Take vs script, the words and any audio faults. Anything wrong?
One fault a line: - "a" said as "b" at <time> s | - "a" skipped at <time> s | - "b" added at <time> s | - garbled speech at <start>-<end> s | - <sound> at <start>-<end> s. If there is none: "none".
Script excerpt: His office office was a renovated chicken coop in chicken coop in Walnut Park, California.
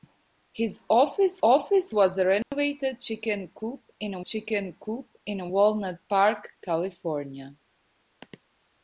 - dropout at 2.4-2.5 s